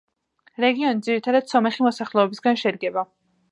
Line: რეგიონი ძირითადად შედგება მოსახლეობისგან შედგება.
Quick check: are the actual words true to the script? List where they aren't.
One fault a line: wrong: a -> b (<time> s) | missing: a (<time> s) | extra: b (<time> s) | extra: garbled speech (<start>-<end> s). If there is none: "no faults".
wrong: შედგება -> სომეხი (1.5 s)